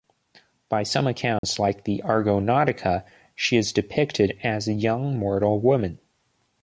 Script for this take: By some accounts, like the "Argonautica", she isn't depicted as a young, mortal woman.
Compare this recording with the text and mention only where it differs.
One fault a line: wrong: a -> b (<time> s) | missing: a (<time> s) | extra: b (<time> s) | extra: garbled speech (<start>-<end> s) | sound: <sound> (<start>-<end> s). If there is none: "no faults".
sound: dropout (1.4-1.4 s)
wrong: isn't -> is (3.5 s)